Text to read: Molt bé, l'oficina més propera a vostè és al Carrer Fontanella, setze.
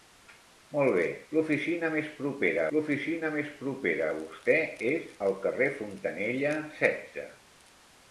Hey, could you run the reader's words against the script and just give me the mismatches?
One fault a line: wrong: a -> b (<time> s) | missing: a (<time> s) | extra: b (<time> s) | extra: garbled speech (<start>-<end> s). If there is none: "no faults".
extra: l'oficina més propera (2.8 s)